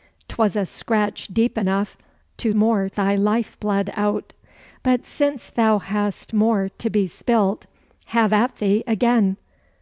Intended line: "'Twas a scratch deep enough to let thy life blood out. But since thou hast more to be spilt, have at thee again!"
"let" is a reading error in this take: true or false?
true